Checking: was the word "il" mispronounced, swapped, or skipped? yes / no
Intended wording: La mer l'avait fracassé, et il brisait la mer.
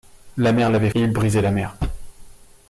no